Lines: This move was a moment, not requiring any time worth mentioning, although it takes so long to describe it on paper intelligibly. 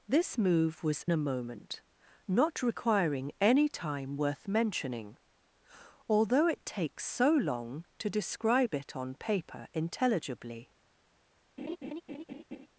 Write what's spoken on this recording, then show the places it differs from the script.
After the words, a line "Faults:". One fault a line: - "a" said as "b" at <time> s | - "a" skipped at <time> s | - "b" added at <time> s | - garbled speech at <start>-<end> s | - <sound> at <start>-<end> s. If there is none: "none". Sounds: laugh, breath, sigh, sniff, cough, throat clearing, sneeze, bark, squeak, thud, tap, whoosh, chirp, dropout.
This move was a moment, not requiring any time worth mentioning, although it takes so long to describe it on paper intelligibly.
Faults:
- laugh at 11.6-12.7 s